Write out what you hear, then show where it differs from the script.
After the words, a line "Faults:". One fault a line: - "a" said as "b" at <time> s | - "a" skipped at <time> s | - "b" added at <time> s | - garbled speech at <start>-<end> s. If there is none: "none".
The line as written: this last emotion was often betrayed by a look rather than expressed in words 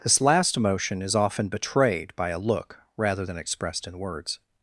this last emotion is often betrayed by a look rather than expressed in words
Faults:
- "was" said as "is" at 1.0 s